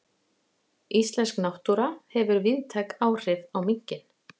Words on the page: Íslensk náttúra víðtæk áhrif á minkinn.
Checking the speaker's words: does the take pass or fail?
fail